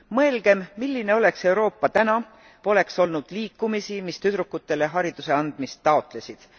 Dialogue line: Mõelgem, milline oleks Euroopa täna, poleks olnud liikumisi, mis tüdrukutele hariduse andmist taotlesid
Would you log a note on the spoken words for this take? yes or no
no